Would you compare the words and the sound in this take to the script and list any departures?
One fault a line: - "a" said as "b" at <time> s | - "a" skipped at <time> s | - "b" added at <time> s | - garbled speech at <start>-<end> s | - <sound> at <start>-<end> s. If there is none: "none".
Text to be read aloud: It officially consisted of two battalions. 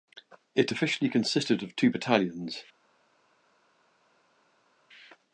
none